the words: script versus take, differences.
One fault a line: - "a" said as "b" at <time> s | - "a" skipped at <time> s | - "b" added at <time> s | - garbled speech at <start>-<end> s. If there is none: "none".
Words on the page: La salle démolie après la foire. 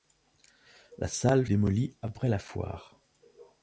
none